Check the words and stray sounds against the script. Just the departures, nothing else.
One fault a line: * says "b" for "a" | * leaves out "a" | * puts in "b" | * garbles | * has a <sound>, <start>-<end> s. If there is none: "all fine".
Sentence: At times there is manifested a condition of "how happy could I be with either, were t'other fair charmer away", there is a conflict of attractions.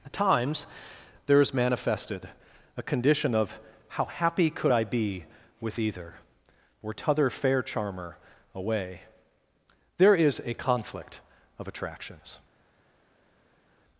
* says "or" for "were"